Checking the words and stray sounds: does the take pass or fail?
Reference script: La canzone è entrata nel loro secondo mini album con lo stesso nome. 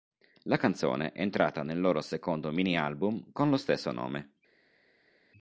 pass